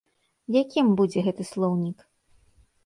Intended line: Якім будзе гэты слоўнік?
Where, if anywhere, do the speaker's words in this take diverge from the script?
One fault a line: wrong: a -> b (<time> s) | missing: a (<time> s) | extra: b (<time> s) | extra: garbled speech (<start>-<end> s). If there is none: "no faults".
no faults